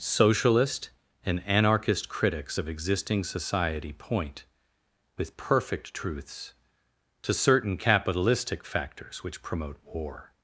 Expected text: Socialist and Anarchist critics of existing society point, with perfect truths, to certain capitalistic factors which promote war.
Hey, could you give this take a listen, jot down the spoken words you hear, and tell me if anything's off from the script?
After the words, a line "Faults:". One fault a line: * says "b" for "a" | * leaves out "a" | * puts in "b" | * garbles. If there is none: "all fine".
Socialist and Anarchist critics of existing society point, with perfect truths, to certain capitalistic factors which promote war.
Faults:
all fine